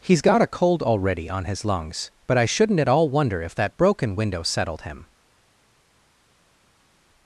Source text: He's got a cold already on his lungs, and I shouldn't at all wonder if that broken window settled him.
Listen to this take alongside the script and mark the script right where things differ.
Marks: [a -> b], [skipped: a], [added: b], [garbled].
He's got a cold already on his lungs, [and -> but] I shouldn't at all wonder if that broken window settled him.